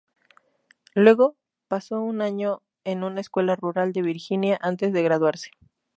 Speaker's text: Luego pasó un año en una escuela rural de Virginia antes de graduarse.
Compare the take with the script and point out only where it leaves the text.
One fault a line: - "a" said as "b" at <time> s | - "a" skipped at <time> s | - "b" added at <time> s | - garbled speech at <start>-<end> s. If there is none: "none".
none